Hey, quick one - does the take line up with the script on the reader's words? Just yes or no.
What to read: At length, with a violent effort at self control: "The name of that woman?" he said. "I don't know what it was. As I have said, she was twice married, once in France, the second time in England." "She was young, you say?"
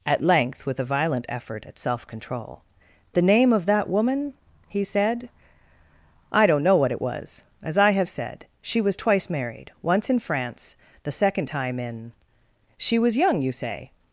no